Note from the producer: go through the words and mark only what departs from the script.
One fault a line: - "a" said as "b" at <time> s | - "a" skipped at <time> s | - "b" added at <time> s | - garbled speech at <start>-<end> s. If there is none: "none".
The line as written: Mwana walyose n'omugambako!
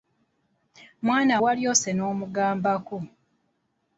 none